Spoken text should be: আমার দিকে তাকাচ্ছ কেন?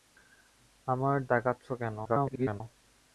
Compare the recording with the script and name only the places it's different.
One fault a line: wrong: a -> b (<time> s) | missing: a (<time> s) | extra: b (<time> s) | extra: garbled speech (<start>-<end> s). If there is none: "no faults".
missing: দিকে (1.2 s)
extra: garbled speech (2.0-2.6 s)